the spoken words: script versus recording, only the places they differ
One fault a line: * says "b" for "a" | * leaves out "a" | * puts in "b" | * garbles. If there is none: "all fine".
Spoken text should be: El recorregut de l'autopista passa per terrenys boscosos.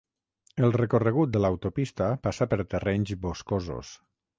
all fine